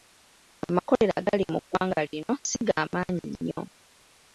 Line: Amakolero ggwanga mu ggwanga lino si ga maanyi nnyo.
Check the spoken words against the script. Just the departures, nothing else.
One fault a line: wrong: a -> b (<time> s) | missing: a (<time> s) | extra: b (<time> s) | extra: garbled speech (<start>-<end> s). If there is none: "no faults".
wrong: ggwanga -> agali (1.2 s)